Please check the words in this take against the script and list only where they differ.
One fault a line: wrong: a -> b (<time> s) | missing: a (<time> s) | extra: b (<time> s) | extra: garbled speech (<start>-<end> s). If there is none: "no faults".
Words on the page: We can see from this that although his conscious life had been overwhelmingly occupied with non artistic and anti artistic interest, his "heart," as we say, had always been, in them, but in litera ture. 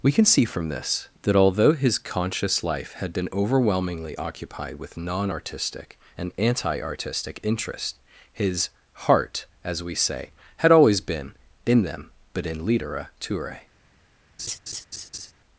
no faults